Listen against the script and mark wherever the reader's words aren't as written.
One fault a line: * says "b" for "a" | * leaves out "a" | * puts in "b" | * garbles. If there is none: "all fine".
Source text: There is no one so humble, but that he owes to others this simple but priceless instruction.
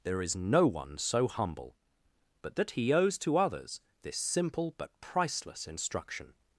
all fine